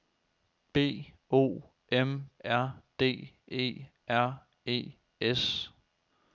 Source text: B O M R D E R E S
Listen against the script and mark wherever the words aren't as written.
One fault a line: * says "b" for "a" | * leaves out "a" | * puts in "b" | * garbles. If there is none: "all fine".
all fine